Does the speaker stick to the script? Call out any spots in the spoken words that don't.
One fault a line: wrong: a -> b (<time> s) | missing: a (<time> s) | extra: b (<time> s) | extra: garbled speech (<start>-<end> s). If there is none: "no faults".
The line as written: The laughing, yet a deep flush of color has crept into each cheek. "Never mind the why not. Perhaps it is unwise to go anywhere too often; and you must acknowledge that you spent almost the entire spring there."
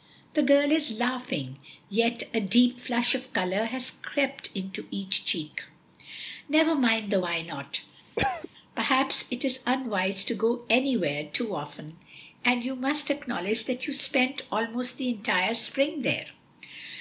extra: girl is (0.4 s)